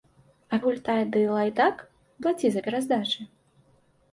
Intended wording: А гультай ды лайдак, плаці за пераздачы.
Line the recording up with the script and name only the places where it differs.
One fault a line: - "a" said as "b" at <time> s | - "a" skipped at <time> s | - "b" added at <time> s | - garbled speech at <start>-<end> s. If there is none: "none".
none